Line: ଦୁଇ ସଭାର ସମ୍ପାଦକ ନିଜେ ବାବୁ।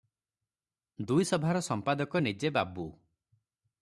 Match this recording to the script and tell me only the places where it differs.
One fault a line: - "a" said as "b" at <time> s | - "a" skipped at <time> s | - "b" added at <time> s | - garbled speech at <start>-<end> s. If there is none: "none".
none